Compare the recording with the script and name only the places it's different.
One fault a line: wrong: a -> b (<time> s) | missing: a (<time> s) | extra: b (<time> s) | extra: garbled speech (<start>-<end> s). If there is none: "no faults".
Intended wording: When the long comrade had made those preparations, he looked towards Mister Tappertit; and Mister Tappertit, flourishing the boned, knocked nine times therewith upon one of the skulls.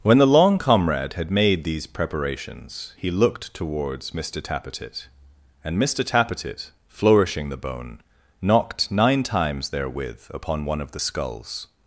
wrong: those -> these (1.6 s)
wrong: boned -> bone (7.6 s)